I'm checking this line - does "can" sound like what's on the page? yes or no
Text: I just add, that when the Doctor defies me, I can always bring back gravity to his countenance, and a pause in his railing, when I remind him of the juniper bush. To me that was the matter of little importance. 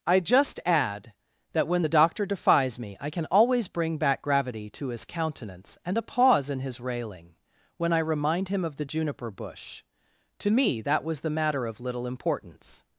yes